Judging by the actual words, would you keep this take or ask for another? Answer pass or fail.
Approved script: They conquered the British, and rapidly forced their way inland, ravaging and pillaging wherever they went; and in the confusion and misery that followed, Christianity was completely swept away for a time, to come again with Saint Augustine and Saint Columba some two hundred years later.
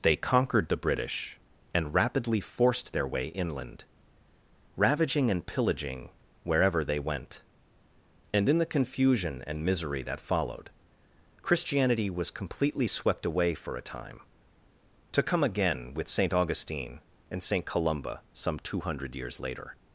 pass